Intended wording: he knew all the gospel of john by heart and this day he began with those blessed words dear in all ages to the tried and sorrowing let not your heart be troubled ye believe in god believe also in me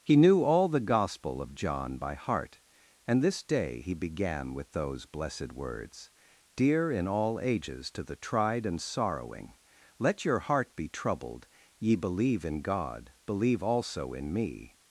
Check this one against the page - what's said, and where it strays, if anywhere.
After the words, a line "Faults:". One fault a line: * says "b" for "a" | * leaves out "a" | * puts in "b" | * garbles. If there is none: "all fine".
he knew all the gospel of john by heart and this day he began with those blessed words dear in all ages to the tried and sorrowing let your heart be troubled ye believe in god believe also in me
Faults:
* leaves out "not"